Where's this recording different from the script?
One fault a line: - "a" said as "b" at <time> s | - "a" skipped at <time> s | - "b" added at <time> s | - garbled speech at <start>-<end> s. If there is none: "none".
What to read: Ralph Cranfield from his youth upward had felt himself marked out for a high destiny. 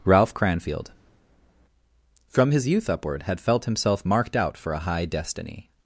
none